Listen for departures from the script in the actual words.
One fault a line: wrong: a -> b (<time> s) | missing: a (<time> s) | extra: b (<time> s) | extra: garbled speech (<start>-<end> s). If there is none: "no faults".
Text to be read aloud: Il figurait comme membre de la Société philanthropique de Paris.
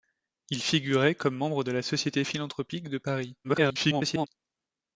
extra: garbled speech (3.4-4.3 s)